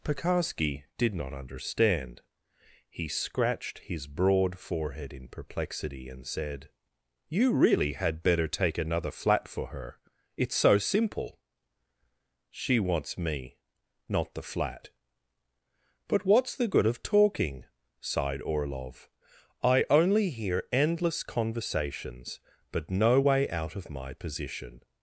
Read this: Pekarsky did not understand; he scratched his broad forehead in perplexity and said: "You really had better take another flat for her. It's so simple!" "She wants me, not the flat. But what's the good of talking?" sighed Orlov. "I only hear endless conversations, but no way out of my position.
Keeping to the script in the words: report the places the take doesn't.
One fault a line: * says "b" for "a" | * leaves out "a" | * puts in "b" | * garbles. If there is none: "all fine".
all fine